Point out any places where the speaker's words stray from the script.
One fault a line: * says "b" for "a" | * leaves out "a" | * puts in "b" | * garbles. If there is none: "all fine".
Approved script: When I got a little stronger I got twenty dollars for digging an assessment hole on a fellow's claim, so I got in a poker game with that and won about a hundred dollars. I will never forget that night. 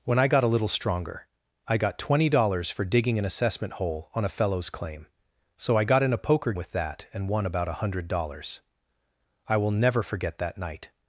* leaves out "game"